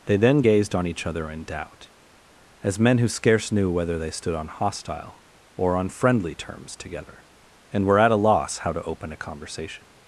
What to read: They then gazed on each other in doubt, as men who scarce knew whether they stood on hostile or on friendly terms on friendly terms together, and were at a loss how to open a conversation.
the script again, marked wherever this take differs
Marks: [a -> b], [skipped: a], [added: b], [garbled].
They then gazed on each other in doubt, as men who scarce knew whether they stood on hostile or on friendly terms [skipped: on friendly terms] together, and were at a loss how to open a conversation.